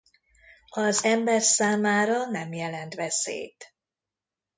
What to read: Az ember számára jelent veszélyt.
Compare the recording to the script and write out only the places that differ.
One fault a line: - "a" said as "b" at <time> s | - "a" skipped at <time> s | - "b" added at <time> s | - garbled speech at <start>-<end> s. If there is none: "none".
- "nem" added at 2.2 s